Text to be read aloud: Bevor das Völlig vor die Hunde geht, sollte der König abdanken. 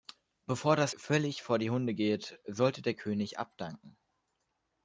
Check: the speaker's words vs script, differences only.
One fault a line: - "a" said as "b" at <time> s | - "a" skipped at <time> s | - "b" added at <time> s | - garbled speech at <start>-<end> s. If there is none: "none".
none